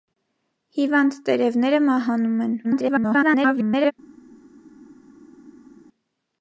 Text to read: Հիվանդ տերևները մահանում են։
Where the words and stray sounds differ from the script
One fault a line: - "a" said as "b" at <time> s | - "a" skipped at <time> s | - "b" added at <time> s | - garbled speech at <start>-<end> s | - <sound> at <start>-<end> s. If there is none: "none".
- garbled speech at 2.6-3.9 s